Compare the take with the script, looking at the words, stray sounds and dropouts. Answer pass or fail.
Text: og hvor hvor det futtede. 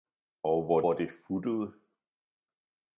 pass